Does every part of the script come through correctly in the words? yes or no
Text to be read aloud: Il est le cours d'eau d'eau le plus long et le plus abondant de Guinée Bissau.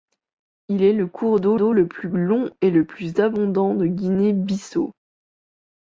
yes